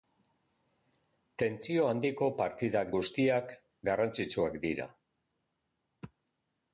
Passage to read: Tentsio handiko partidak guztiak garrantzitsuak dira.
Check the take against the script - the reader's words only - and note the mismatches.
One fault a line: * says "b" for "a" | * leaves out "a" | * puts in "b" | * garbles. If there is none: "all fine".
all fine